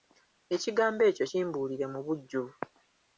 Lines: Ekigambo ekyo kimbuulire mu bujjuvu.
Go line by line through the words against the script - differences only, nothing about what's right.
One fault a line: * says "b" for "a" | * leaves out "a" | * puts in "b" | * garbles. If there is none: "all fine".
all fine